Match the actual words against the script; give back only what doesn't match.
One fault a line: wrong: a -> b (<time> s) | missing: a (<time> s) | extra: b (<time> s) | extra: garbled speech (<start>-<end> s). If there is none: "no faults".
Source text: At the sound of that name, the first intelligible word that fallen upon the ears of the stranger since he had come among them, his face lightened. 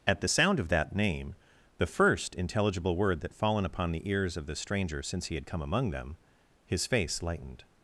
no faults